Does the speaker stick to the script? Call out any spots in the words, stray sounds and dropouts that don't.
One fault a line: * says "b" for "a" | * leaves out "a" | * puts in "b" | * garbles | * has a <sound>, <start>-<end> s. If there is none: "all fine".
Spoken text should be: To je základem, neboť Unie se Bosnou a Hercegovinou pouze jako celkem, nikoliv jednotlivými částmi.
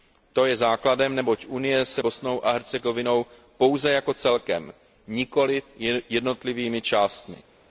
all fine